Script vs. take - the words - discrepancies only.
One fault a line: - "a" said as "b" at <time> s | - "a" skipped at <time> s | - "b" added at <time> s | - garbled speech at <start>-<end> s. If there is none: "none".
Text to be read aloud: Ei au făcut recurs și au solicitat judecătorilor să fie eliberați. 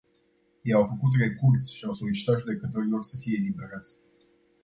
none